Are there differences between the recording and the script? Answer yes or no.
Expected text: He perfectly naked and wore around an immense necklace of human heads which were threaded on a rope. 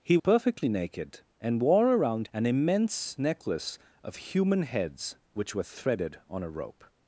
no